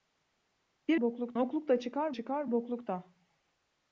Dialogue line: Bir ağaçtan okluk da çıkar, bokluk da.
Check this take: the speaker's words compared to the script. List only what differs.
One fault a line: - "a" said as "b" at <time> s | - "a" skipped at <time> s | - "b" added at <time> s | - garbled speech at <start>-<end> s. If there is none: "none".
- "ağaçtan" said as "bokluk" at 1.0 s
- "çıkar" added at 2.1 s